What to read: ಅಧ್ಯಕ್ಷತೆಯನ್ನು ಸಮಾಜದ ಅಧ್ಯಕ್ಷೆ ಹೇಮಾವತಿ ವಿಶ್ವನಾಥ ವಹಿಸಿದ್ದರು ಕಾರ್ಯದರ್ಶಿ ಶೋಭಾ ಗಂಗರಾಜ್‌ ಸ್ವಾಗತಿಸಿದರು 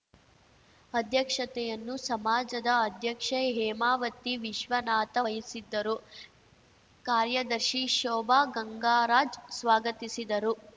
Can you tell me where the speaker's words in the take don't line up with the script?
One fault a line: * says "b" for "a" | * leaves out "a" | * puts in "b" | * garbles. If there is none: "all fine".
all fine